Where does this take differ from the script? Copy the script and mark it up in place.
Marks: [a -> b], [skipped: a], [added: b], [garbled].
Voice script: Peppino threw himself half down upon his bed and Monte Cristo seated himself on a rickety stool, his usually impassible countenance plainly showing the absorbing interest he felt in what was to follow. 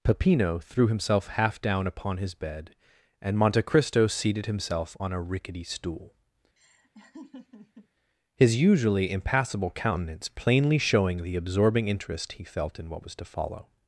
Peppino threw himself half down upon his bed and Monte Cristo seated himself on a rickety stool, his usually impassible countenance plainly showing the absorbing interest he felt in what was to follow.